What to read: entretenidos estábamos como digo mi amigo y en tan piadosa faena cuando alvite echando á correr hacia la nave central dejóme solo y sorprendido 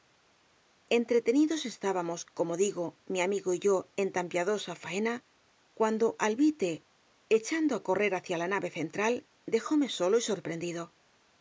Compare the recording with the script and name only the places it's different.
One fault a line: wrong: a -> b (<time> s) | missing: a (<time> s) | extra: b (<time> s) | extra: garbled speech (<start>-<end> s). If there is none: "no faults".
extra: yo (3.6 s)